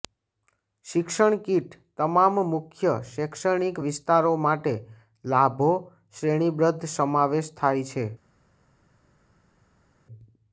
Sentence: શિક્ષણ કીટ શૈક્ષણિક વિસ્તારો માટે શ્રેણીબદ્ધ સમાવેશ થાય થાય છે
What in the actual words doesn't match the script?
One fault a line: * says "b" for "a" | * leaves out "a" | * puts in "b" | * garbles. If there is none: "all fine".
* puts in "તમામ મુખ્ય"
* puts in "લાભો"
* leaves out "થાય"